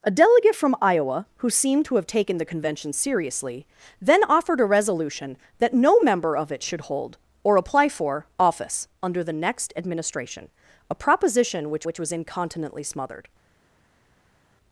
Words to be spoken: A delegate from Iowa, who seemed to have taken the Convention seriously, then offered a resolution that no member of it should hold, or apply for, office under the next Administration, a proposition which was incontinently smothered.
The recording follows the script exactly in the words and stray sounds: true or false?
false